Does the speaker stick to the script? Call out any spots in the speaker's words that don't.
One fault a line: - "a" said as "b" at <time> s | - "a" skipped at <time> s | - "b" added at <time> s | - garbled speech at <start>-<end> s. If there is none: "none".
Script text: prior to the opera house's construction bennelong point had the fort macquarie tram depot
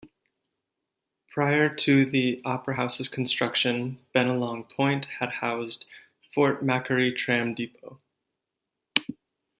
- "the" said as "housed" at 5.3 s